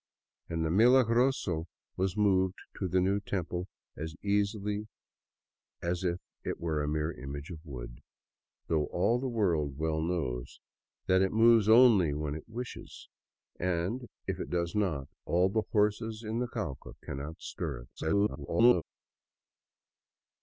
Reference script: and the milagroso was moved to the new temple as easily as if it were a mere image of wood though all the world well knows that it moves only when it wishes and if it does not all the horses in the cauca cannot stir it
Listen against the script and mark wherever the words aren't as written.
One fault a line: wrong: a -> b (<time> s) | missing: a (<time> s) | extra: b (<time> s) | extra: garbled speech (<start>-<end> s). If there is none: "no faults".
extra: garbled speech (18.0-18.8 s)